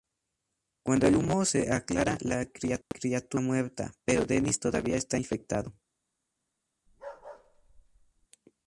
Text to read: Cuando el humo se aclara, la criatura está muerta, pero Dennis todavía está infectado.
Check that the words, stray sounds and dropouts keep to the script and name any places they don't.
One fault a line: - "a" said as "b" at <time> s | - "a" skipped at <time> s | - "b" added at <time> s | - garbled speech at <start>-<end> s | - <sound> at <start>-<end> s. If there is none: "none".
- dropout at 2.8-2.9 s
- bark at 6.9-8.3 s